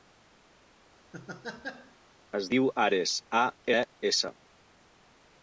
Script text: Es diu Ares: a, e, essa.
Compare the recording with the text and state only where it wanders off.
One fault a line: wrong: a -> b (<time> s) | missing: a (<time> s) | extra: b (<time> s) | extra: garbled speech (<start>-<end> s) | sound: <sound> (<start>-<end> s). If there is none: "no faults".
sound: laugh (1.1-2.0 s)